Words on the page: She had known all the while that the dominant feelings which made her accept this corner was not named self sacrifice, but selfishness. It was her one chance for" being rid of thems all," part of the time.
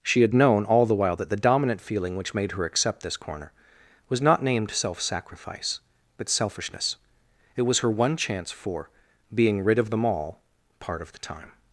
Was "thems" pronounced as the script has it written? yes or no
no